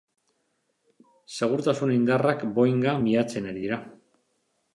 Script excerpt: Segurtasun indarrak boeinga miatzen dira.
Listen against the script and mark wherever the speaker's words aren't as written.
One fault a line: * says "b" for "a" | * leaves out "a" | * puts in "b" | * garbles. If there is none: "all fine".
* puts in "ari"